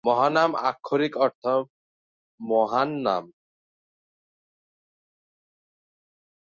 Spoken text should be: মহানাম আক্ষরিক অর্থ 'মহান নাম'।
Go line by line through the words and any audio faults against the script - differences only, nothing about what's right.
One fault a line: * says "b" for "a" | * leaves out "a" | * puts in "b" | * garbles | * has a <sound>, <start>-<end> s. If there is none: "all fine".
all fine